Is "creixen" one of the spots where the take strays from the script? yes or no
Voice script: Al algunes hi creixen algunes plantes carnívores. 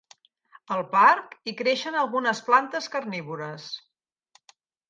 no